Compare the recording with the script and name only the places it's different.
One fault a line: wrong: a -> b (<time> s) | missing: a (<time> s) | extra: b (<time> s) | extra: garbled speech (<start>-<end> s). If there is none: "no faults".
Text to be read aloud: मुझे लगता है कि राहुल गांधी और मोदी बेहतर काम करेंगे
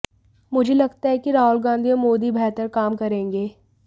no faults